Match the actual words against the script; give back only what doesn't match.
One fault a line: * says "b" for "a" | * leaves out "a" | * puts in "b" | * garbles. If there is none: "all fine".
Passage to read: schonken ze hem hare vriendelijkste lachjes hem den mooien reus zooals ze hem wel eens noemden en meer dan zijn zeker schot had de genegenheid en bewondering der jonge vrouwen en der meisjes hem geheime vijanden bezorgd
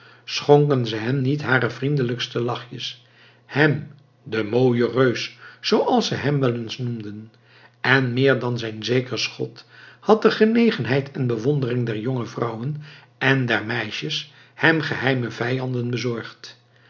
* puts in "niet"